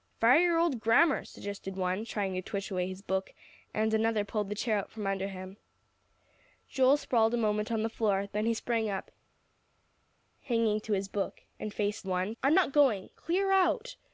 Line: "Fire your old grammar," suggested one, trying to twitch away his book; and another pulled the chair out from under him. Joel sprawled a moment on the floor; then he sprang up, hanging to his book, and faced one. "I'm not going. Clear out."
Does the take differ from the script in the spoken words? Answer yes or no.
no